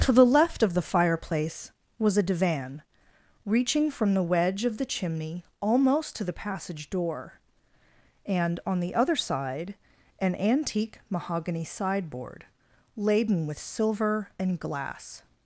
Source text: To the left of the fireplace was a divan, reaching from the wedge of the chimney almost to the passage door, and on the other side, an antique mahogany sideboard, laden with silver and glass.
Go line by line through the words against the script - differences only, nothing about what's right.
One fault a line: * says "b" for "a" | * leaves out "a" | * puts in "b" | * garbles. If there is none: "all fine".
all fine